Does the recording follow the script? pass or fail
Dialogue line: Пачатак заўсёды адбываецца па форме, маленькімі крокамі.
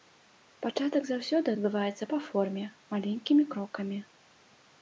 pass